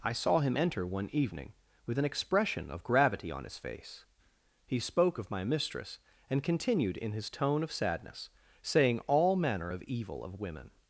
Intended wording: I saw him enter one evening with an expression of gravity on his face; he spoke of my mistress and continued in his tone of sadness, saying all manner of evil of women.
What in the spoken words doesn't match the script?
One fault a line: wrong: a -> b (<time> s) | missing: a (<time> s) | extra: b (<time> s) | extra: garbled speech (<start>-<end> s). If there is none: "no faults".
no faults